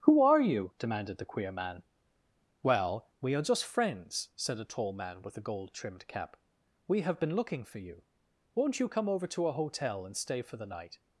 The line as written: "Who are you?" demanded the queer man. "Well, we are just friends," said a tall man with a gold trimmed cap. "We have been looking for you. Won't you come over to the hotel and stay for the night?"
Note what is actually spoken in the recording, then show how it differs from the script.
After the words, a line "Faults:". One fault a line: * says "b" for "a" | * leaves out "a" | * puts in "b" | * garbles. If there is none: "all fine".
"Who are you?" demanded the queer man. "Well, we are just friends," said a tall man with a gold trimmed cap. "We have been looking for you. Won't you come over to a hotel and stay for the night?"
Faults:
* says "a" for "the"